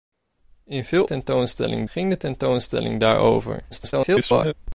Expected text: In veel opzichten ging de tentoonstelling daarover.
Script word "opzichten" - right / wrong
wrong